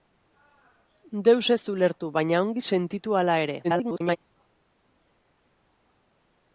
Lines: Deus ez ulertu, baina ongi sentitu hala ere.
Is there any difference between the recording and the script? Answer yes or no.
yes